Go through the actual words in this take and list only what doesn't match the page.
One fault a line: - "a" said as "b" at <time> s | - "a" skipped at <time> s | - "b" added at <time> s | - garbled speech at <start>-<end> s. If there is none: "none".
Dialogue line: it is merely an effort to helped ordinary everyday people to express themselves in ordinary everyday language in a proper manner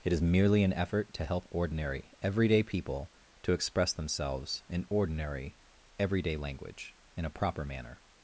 - "helped" said as "help" at 1.2 s